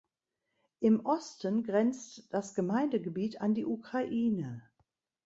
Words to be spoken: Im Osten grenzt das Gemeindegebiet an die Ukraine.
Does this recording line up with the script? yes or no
yes